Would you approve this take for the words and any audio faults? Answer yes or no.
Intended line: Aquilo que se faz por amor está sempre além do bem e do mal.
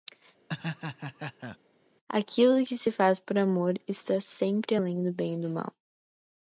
no